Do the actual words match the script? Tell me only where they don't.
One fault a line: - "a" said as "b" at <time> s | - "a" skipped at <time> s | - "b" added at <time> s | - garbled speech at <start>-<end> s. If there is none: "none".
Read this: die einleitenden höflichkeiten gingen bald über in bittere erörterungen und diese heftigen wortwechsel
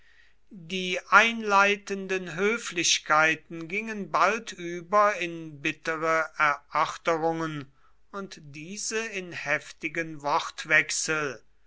- "in" added at 9.1 s